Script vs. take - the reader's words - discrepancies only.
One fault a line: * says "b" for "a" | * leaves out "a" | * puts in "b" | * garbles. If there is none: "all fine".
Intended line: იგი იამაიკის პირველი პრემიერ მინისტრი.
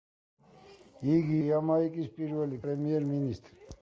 all fine